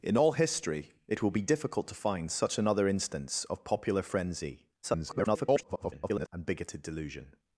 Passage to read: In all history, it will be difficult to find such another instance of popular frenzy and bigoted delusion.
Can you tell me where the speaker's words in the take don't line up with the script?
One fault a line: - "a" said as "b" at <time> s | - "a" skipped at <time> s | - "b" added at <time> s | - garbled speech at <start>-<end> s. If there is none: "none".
- garbled speech at 4.8-6.3 s